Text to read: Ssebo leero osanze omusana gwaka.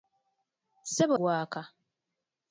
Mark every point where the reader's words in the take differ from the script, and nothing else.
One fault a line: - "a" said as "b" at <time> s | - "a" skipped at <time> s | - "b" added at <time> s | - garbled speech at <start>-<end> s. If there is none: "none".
- "leero osanze omusana" skipped at 1.1 s